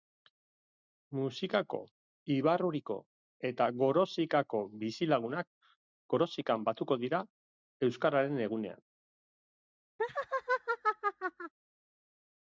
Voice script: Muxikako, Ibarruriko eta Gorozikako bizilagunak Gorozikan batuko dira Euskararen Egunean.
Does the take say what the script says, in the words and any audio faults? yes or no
no